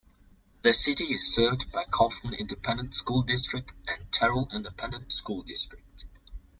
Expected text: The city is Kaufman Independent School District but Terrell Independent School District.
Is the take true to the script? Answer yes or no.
no